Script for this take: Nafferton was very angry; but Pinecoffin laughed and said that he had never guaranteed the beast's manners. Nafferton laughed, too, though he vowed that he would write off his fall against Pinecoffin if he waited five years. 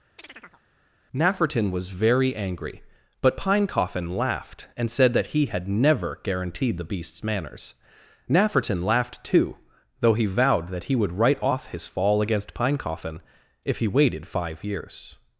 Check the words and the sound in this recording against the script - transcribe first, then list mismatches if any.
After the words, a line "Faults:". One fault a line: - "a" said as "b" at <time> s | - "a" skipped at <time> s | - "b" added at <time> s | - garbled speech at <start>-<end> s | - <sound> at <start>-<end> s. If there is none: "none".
Nafferton was very angry; but Pinecoffin laughed and said that he had never guaranteed the beast's manners. Nafferton laughed, too, though he vowed that he would write off his fall against Pinecoffin if he waited five years.
Faults:
- chirp at 0.2-0.6 s